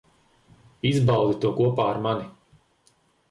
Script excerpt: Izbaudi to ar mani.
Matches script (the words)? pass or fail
fail